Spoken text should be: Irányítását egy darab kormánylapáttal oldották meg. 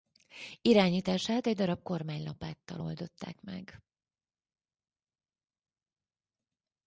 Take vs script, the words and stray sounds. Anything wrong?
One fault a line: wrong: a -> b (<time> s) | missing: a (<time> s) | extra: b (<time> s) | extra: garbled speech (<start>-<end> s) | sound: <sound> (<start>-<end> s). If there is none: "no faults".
no faults